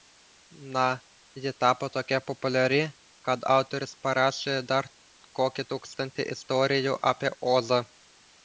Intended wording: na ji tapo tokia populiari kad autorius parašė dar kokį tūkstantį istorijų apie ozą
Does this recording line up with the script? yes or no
yes